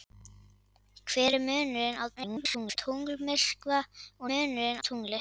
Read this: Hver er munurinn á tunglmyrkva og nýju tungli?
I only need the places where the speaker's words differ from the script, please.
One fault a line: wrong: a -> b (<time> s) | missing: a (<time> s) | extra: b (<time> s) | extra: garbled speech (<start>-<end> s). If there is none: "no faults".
extra: garbled speech (2.2-2.8 s)
wrong: nýju -> munurinn (4.3 s)